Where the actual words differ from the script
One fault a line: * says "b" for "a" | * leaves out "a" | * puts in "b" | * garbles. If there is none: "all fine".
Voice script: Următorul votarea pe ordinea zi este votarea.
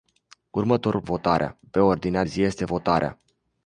all fine